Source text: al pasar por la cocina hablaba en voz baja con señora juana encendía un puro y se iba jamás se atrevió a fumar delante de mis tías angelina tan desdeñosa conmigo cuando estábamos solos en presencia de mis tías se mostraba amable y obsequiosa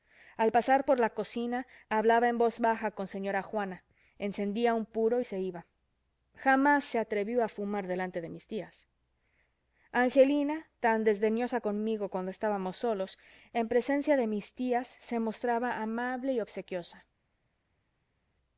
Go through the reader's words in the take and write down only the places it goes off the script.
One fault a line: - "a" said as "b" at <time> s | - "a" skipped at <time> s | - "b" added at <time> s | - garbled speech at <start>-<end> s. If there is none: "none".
none